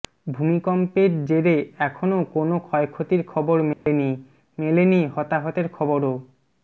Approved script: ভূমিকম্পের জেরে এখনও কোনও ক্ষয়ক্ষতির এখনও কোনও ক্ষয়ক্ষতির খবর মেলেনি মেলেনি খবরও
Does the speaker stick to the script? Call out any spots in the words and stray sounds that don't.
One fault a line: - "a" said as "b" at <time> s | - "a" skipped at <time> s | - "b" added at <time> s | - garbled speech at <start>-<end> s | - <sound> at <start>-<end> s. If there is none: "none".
- "এখনও কোনও ক্ষয়ক্ষতির" skipped at 3.2 s
- dropout at 3.7-3.9 s
- "হতাহতের" added at 5.1 s